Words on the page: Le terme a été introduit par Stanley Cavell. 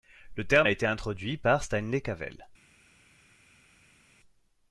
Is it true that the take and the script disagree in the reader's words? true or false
false